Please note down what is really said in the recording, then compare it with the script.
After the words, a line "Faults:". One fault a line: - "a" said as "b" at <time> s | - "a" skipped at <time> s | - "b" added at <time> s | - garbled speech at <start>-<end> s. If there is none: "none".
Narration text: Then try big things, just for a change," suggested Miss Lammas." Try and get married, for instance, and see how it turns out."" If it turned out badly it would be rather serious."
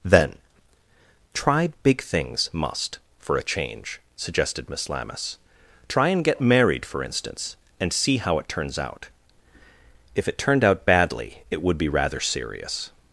Then try big things, must for a change," suggested Miss Lammas." Try and get married, for instance, and see how it turns out."" If it turned out badly it would be rather serious."
Faults:
- "just" said as "must" at 2.5 s